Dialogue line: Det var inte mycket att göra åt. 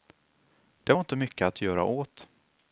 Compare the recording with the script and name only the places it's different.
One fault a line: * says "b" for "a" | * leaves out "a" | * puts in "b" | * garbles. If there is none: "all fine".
all fine